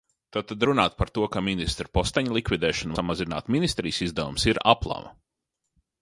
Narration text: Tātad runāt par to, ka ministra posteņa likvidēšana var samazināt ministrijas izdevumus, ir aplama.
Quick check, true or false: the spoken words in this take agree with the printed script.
false